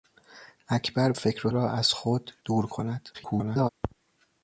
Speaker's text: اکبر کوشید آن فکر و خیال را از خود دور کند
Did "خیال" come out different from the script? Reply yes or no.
yes